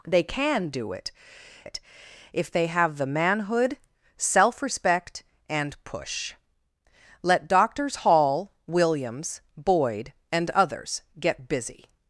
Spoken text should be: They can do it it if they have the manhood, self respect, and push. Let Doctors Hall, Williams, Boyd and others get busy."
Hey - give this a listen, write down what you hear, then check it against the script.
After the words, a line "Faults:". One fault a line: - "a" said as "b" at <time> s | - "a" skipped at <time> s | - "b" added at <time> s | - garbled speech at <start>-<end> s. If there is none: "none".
They can do it it if they have the manhood, self respect, and push. Let Doctors Hall, Williams, Boyd and others get busy."
Faults:
none